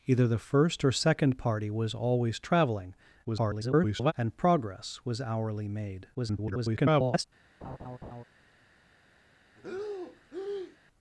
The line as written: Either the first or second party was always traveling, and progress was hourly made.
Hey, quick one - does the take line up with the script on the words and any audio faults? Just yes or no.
no